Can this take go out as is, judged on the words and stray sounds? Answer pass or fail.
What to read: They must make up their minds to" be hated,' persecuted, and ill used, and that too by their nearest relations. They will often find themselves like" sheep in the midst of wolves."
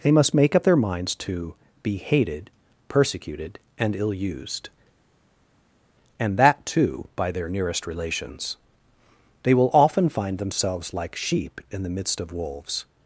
pass